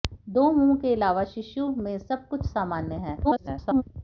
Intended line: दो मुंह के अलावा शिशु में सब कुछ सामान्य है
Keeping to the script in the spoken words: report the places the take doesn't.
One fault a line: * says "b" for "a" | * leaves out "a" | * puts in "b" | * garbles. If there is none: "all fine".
* garbles